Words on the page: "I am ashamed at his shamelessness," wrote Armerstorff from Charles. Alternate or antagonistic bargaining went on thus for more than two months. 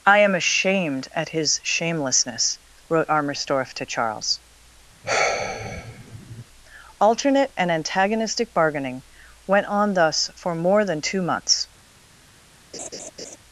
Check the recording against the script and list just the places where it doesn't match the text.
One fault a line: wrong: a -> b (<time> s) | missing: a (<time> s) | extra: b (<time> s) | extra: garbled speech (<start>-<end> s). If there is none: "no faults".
wrong: from -> to (3.8 s)
wrong: or -> and (7.6 s)